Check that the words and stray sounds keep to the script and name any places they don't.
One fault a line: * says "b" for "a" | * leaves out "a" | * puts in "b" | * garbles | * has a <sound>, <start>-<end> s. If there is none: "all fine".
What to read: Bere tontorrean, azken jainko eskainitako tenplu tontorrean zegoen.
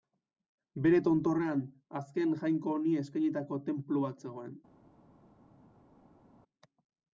* puts in "honi"
* says "bat" for "tontorrean"